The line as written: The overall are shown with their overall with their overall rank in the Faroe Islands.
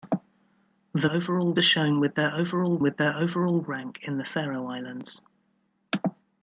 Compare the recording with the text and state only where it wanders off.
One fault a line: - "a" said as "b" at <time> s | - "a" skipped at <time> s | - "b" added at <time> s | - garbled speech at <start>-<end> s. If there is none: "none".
none